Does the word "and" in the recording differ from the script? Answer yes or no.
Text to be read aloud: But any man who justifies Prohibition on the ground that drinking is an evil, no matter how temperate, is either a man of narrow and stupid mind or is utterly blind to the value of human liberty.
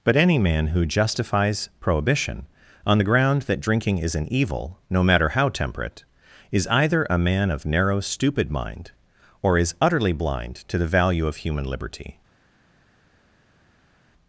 yes